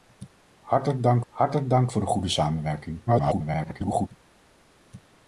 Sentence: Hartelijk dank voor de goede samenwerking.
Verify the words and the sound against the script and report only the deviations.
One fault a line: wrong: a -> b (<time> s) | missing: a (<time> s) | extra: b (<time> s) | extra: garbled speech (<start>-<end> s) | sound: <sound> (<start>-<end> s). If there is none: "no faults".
extra: hartelijk dank (1.3 s)
extra: garbled speech (3.1-4.1 s)